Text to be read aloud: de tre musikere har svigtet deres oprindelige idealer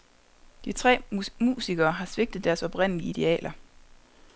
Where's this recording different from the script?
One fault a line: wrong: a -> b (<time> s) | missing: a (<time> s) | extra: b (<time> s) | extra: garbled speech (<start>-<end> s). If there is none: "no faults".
no faults